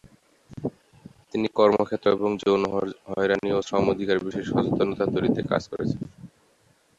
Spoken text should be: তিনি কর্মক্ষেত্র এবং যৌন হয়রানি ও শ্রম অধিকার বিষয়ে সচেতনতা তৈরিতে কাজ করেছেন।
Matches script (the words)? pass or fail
pass